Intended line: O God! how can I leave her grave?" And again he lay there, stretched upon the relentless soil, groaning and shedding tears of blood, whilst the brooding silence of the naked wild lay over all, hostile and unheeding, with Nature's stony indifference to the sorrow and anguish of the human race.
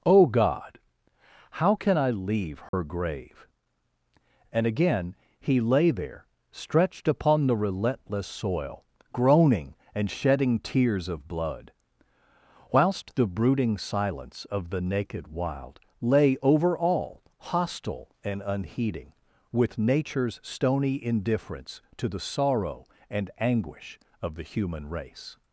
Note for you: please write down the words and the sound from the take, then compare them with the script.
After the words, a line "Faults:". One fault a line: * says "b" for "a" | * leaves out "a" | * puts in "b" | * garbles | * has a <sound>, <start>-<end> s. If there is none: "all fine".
O God! how can I leave her grave?" And again he lay there, stretched upon the relentless soil, groaning and shedding tears of blood, whilst the brooding silence of the naked wild lay over all, hostile and unheeding, with Nature's stony indifference to the sorrow and anguish of the human race.
Faults:
* has a dropout, 2.7-2.7 s